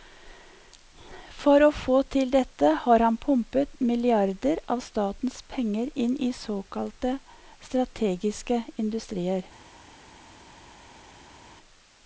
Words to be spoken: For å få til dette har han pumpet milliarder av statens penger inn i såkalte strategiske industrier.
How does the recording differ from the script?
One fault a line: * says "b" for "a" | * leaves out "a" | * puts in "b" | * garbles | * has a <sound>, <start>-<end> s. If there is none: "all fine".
all fine